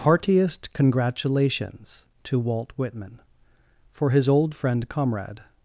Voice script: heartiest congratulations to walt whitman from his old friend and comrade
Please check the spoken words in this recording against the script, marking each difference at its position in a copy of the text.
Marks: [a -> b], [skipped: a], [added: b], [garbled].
heartiest congratulations to walt whitman [from -> for] his old friend [skipped: and] comrade